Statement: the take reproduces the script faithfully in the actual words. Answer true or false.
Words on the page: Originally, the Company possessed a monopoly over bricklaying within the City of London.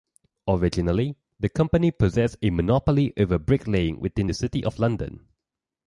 true